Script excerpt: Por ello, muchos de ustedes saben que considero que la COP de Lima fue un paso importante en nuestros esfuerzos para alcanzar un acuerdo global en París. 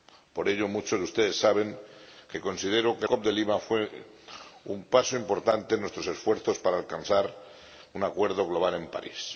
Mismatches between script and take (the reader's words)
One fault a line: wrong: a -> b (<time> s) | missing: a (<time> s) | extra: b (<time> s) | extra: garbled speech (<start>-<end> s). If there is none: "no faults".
missing: la (3.1 s)